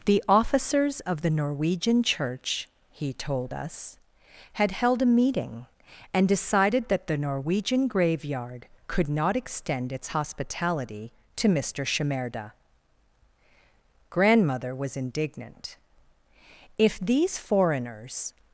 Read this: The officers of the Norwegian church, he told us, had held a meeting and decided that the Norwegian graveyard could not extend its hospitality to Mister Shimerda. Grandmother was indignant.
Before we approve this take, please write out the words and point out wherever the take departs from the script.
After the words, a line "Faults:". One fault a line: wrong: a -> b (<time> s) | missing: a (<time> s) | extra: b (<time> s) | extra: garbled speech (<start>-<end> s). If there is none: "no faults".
The officers of the Norwegian church, he told us, had held a meeting and decided that the Norwegian graveyard could not extend its hospitality to Mister Shimerda. Grandmother was indignant. "If these foreigners
Faults:
extra: If these foreigners (16.8 s)